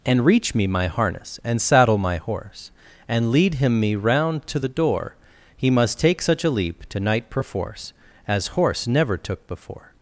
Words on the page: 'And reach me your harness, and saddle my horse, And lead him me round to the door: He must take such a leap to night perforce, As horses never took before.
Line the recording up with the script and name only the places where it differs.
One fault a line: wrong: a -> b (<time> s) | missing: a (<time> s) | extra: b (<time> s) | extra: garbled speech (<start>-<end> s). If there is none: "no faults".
wrong: your -> my (0.7 s)
wrong: horses -> horse (8.5 s)